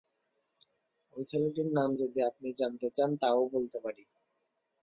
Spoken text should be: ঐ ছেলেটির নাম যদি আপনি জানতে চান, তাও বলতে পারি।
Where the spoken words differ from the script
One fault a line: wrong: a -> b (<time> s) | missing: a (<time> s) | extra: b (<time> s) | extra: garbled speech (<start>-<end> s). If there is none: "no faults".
no faults